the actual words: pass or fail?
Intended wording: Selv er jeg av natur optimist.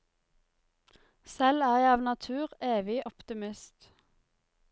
fail